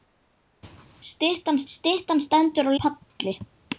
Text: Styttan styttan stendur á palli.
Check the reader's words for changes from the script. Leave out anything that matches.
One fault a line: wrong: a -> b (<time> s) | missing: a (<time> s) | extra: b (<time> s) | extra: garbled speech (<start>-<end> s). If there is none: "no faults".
no faults